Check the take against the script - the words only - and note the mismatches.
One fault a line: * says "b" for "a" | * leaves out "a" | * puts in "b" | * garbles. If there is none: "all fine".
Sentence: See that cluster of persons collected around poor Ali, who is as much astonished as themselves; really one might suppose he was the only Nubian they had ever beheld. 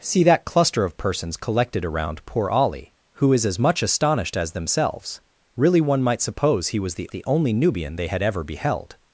* puts in "the"